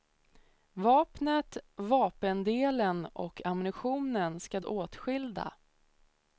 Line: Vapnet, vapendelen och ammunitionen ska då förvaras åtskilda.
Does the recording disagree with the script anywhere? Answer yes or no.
yes